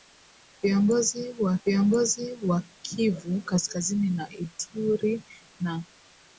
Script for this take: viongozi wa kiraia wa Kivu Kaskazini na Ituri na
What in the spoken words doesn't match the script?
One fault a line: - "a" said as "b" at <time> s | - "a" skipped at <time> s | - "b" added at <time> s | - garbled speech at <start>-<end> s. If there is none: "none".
- "kiraia" said as "viongozi" at 1.6 s